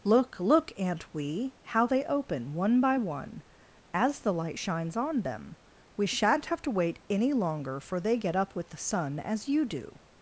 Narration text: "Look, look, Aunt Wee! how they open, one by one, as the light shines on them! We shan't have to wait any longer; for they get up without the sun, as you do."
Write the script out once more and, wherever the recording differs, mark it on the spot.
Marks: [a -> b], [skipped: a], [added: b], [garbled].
"Look, look, Aunt Wee! how they open, one by one, as the light shines on them! We shan't have to wait any longer; for they get up [without -> with] the sun, as you do."